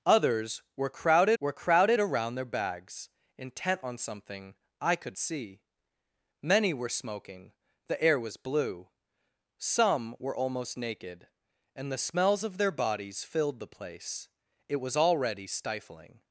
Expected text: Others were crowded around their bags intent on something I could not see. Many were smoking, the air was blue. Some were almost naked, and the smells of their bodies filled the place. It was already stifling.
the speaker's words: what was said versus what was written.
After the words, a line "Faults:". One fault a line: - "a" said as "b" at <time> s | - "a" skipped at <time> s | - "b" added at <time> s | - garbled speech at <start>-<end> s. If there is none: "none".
Others were crowded were crowded around their bags intent on something I could see. Many were smoking, the air was blue. Some were almost naked, and the smells of their bodies filled the place. It was already stifling.
Faults:
- "were crowded" added at 1.4 s
- "not" skipped at 5.2 s